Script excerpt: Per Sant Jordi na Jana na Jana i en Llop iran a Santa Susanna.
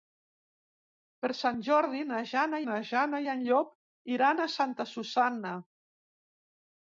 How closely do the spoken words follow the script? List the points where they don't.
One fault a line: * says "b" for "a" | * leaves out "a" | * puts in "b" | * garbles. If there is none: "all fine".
all fine